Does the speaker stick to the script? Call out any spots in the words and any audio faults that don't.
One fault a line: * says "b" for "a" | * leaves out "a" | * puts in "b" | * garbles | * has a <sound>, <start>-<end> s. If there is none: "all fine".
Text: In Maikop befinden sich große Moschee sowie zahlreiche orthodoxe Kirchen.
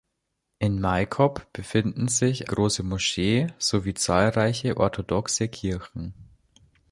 all fine